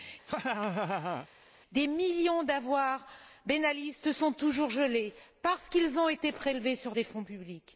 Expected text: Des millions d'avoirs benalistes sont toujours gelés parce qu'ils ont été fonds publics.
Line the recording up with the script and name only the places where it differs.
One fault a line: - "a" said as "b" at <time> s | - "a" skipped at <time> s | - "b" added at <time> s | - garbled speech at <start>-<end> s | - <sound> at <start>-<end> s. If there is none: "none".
- laugh at 0.3-1.3 s
- "prélevés sur des" added at 6.3 s